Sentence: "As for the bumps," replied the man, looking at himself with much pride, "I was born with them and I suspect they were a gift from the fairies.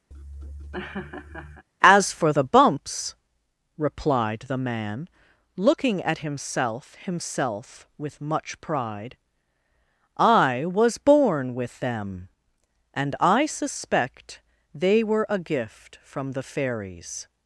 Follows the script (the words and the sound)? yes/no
no